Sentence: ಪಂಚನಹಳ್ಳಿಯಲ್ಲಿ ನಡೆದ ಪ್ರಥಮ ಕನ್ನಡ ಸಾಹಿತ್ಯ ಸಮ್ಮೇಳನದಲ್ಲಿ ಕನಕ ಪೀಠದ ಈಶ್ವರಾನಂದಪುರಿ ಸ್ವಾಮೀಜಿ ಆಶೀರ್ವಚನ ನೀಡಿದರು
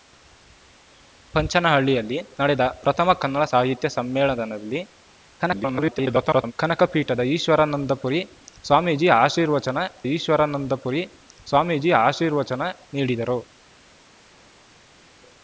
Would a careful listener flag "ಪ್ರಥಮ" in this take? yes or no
no